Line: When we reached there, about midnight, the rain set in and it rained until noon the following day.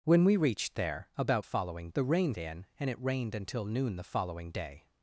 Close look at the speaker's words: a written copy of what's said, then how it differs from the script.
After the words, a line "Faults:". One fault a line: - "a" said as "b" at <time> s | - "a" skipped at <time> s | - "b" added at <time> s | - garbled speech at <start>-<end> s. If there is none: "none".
When we reached there, about following, the rain in and it rained until noon the following day.
Faults:
- "midnight" said as "following" at 1.4 s
- "set" skipped at 2.3 s